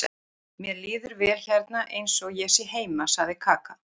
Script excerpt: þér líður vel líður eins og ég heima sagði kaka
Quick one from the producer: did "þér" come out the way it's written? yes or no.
no